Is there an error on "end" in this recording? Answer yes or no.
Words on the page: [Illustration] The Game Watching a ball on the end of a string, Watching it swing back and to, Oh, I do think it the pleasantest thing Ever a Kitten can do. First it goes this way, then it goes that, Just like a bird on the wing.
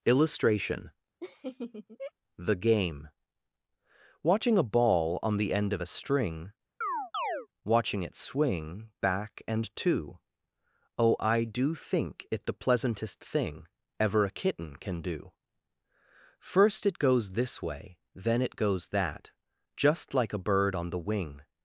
no